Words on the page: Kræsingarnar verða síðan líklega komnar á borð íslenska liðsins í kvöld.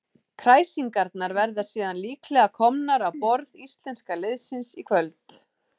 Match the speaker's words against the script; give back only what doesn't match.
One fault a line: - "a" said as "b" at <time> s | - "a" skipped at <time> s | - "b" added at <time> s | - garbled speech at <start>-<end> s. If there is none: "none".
none